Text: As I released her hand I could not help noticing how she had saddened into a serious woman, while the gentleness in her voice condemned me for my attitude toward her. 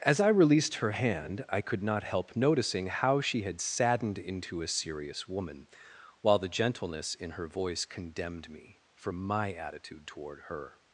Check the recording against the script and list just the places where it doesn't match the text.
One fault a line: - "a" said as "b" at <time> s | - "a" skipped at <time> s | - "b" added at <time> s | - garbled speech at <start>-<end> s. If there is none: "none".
none